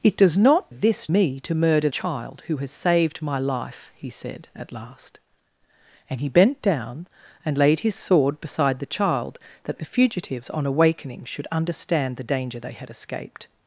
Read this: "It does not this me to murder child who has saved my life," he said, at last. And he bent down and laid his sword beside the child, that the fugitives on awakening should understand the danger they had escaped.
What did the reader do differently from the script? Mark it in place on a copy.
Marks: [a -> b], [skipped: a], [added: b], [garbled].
"It does not this me to murder child who has saved my life," he said, at last. And he bent down and laid his sword beside the child, that the fugitives on awakening should understand the danger they had escaped.